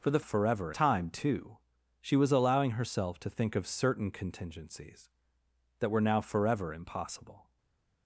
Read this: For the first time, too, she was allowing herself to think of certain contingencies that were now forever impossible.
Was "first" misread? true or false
true